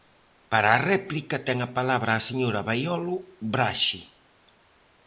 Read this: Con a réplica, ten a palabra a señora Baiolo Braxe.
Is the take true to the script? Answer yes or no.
no